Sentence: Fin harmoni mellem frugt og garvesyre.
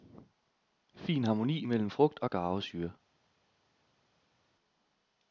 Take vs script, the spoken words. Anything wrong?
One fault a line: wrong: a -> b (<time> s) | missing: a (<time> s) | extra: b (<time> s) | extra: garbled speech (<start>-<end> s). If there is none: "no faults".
no faults